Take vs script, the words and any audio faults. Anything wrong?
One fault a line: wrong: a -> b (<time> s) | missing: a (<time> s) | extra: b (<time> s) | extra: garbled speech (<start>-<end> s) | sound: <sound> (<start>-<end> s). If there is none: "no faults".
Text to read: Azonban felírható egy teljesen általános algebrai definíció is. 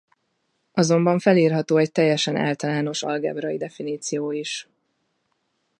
no faults